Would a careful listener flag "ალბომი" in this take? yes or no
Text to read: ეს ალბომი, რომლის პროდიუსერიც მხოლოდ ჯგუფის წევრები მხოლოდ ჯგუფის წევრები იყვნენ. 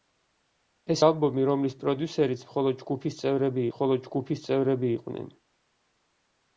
no